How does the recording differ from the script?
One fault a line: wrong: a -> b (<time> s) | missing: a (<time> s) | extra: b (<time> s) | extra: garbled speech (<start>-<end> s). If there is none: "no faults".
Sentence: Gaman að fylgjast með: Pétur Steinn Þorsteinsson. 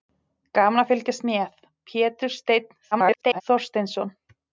extra: garbled speech (2.9-3.4 s)